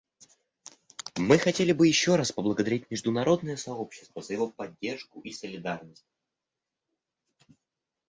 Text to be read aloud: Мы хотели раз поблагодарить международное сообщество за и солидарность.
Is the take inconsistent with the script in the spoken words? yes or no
yes